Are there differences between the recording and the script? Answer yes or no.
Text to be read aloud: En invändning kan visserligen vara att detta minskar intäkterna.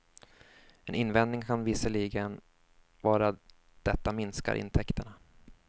yes